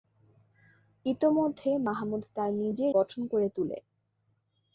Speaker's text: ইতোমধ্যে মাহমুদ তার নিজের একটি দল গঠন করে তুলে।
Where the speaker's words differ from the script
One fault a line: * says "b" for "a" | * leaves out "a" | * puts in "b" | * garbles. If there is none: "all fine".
* leaves out "একটি দল"